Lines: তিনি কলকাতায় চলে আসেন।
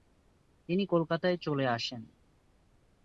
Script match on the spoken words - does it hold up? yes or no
yes